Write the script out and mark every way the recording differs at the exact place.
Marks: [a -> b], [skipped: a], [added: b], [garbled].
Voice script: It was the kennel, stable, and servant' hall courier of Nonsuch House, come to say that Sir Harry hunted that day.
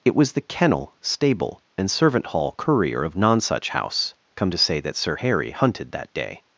It was the kennel, stable, and servant' hall courier of Nonsuch House, come to say that Sir Harry hunted that day.